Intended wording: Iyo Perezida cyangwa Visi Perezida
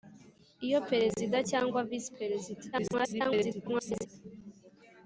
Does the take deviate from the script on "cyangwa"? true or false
false